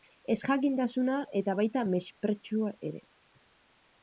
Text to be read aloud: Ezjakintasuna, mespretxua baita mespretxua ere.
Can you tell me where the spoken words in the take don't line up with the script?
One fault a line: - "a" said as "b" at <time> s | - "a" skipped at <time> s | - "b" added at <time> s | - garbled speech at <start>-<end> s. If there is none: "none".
- "mespretxua" said as "eta" at 1.4 s